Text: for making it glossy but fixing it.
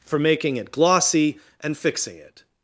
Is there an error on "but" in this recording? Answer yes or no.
yes